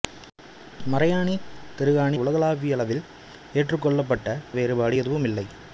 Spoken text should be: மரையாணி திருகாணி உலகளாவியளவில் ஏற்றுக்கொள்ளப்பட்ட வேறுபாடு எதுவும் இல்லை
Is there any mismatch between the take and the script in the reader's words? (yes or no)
no